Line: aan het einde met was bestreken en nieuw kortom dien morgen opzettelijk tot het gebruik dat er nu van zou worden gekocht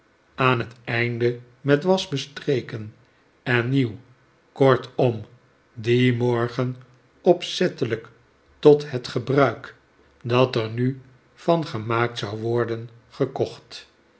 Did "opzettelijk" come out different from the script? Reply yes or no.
no